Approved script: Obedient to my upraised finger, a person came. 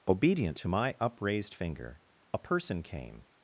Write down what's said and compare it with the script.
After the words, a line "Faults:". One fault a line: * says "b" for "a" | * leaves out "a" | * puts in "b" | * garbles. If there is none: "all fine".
Obedient to my upraised finger, a person came.
Faults:
all fine